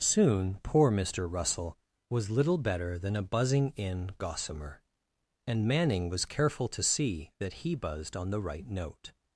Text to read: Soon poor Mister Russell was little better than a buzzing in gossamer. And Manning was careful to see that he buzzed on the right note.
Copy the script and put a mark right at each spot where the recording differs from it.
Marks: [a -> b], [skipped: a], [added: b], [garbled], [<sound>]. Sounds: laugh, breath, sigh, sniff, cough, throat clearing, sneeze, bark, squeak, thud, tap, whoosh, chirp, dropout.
Soon poor Mister Russell was little better than a buzzing in gossamer. And Manning was careful to see that he buzzed on the right note.